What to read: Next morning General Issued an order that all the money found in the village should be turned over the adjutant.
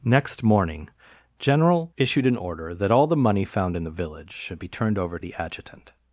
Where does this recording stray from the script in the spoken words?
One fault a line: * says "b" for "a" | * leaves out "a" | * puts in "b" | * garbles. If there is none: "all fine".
all fine